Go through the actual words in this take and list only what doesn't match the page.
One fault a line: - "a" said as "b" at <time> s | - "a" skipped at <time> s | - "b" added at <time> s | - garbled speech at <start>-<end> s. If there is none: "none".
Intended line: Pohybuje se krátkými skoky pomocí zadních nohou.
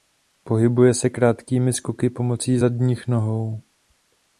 none